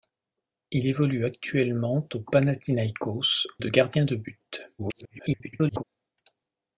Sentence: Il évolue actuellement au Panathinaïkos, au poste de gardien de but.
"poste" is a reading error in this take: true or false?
true